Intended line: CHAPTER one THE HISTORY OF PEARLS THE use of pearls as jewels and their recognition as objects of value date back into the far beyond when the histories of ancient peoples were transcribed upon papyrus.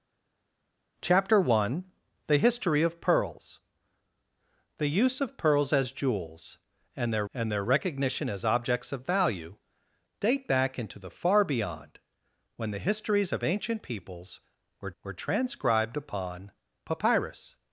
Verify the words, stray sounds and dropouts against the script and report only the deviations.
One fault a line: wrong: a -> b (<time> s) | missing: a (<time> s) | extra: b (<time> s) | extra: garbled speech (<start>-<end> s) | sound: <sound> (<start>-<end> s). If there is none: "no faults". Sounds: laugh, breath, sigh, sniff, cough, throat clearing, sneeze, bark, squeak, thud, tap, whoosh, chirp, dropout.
extra: and their (7.3 s)
extra: were (15.0 s)